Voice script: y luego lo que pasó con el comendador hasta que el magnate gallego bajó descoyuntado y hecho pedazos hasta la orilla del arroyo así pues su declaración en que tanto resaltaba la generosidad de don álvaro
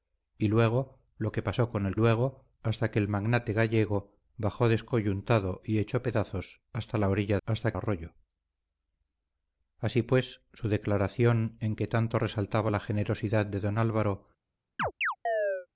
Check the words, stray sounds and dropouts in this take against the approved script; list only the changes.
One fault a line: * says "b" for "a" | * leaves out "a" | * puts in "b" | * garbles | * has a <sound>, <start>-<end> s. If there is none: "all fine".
* says "luego" for "comendador"
* says "hasta" for "del"
* has a chirp, 14.8-15.7 s